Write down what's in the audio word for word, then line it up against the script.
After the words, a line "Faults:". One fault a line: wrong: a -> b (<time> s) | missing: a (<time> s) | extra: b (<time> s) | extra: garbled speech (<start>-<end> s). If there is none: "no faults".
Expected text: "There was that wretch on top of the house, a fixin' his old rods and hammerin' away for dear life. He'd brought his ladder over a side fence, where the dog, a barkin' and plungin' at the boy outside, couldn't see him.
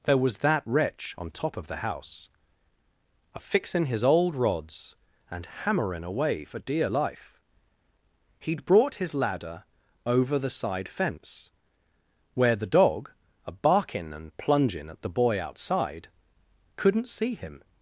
"There was that wretch on top of the house, a fixin' his old rods and hammerin' away for dear life. He'd brought his ladder over the side fence, where the dog, a barkin' and plungin' at the boy outside, couldn't see him.
Faults:
wrong: a -> the (10.4 s)